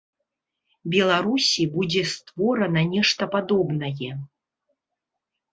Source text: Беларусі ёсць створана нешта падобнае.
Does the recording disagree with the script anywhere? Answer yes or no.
yes